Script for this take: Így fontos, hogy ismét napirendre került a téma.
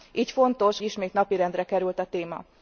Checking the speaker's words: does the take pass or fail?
fail